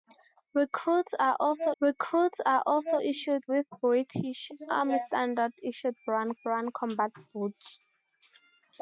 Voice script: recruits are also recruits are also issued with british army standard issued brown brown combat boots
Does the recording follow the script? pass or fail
pass